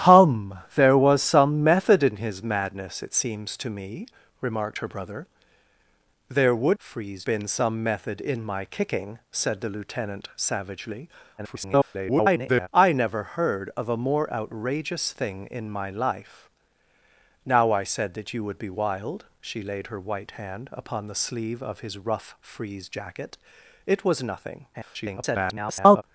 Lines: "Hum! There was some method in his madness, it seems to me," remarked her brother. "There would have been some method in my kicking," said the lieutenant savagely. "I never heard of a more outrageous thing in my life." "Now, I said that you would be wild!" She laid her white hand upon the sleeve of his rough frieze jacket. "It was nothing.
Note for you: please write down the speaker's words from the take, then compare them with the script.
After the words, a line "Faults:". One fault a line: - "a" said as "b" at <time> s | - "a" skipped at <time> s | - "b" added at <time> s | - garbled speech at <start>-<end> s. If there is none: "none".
"Hum! There was some method in his madness, it seems to me," remarked her brother. "There would frieze been some method in my kicking," said the lieutenant savagely. [garbled] "I never heard of a more outrageous thing in my life." "Now, I said that you would be wild!" She laid her white hand upon the sleeve of his rough frieze jacket. "It was nothing. [garbled]
Faults:
- "have" said as "frieze" at 6.8 s
- garbled speech at 11.4-12.7 s
- garbled speech at 24.7-26.0 s